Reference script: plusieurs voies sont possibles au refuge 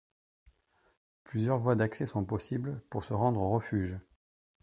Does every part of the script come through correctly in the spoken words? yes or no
no